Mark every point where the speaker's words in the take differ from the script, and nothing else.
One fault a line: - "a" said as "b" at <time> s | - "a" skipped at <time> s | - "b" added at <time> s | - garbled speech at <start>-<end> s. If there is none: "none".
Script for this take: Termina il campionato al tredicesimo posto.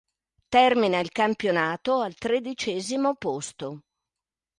none